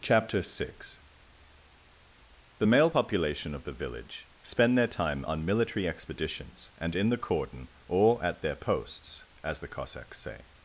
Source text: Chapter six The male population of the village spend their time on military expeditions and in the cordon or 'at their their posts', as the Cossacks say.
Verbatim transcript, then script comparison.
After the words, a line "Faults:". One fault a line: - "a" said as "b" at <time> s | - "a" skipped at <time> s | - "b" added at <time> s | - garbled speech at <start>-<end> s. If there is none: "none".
Chapter six The male population of the village spend their time on military expeditions and in the cordon or 'at their posts', as the Cossacks say.
Faults:
- "their" skipped at 8.6 s